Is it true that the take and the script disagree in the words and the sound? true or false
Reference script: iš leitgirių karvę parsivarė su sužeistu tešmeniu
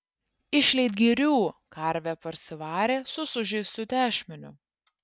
false